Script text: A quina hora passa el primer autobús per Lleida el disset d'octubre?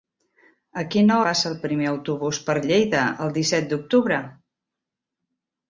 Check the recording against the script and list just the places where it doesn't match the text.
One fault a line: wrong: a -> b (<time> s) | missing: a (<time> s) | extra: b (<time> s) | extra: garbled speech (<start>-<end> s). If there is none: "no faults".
missing: hora (1.2 s)